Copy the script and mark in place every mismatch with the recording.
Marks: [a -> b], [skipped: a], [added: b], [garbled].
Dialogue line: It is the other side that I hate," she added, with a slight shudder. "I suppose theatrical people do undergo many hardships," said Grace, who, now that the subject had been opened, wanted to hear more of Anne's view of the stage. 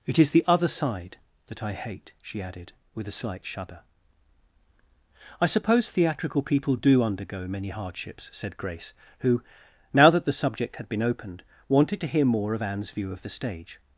It is the other side that I hate," she added, with a slight shudder. "I suppose theatrical people do undergo many hardships," said Grace, who, now that the subject had been opened, wanted to hear more of Anne's view of the stage.